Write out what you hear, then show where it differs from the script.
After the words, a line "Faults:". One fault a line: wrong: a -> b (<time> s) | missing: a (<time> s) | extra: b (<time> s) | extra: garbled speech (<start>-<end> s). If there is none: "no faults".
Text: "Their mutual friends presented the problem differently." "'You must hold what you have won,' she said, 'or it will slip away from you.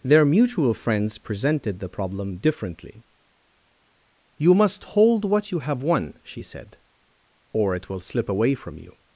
"Their mutual friends presented the problem differently." "'You must hold what you have won,' she said, 'or it will slip away from you.
Faults:
no faults